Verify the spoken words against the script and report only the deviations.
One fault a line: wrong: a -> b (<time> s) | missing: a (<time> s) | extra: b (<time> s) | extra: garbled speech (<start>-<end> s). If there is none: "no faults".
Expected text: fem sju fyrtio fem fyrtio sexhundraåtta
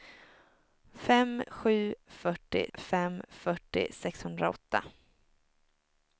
no faults